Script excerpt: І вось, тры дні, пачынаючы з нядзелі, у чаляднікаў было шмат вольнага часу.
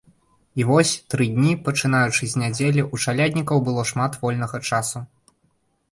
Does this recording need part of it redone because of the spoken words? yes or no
no